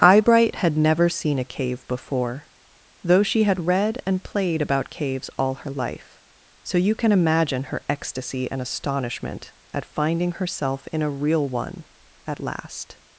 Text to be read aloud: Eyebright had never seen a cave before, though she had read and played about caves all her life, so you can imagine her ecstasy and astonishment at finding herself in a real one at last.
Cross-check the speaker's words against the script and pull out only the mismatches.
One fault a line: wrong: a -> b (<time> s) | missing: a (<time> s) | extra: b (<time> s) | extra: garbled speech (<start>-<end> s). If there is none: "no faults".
no faults